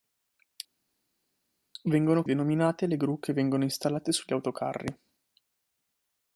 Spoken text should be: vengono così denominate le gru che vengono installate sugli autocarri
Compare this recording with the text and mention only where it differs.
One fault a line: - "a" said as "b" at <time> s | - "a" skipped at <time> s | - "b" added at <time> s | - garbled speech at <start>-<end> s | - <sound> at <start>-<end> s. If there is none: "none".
- "così" skipped at 2.2 s